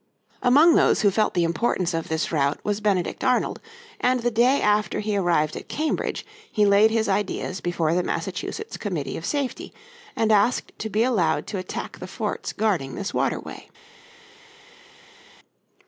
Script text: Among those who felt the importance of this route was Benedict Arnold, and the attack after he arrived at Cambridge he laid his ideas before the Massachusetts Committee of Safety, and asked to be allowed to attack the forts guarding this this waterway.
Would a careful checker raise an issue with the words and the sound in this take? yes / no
yes